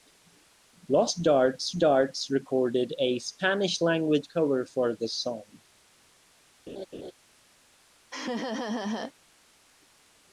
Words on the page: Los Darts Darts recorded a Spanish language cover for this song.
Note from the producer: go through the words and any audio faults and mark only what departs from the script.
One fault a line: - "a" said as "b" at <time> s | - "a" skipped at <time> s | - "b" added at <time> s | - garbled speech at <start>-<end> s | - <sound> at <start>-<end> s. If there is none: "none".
- laugh at 6.7-7.1 s
- laugh at 8.1-9.1 s